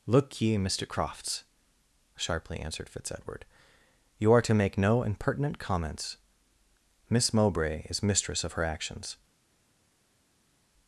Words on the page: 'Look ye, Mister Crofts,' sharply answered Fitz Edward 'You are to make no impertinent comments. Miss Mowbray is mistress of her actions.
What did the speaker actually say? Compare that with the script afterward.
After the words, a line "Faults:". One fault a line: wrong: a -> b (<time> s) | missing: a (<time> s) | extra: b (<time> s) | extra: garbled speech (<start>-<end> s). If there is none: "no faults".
'Look ye, Mister Crofts,' sharply answered Fitz Edward 'You are to make no impertinent comments. Miss Mowbray is mistress of her actions.
Faults:
no faults